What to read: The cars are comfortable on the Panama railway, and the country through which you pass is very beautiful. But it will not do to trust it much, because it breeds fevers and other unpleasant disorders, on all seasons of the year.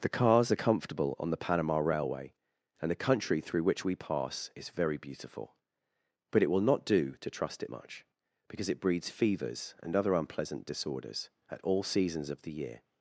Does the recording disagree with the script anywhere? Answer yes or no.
yes